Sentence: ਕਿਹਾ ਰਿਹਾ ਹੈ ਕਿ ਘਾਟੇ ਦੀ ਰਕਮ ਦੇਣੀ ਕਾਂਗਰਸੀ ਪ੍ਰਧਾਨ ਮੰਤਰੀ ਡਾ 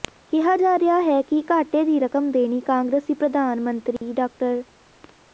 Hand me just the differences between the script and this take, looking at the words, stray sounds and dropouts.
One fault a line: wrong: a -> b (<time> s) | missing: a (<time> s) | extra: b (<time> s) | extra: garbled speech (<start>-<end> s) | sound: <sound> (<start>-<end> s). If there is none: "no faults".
extra: ਜਾ (0.6 s)
sound: dropout (4.0-4.0 s)